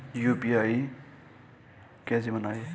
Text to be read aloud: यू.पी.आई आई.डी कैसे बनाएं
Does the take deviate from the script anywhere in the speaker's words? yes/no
yes